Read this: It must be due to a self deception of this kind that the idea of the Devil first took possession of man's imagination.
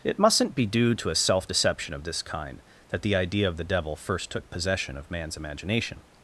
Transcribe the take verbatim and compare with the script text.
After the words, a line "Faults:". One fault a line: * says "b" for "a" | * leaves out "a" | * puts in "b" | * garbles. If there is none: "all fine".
It mustn't be due to a self deception of this kind that the idea of the Devil first took possession of man's imagination.
Faults:
* says "mustn't" for "must"